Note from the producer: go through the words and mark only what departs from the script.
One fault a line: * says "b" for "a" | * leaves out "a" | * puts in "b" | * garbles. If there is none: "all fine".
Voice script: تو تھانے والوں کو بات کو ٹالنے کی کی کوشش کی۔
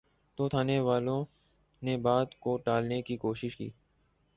* says "نے" for "کو"
* leaves out "کی"